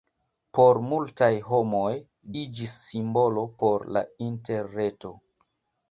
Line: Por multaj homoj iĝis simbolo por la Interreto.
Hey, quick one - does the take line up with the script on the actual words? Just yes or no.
yes